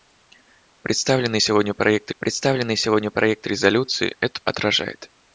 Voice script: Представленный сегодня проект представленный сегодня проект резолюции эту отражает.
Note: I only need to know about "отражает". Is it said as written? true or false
true